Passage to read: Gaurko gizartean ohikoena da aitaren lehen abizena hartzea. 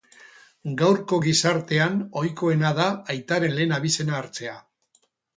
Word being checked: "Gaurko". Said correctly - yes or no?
yes